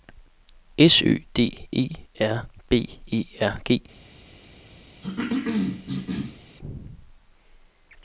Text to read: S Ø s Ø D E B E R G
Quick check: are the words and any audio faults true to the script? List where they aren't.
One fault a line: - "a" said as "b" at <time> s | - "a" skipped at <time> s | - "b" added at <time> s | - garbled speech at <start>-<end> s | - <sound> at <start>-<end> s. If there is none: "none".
- "s Ø" skipped at 1.2 s
- "R" added at 2.2 s
- cough at 5.0-6.4 s